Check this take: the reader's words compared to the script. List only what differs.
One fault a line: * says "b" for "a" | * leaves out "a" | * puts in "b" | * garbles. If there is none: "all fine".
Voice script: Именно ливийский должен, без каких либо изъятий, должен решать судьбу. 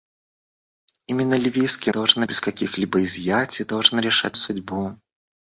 all fine